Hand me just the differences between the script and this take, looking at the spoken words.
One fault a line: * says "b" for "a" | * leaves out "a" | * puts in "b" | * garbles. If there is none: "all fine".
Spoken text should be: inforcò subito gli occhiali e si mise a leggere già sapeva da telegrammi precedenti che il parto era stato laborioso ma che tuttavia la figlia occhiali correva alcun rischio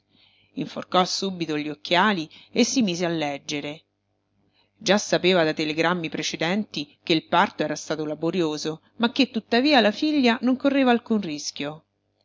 * says "non" for "occhiali"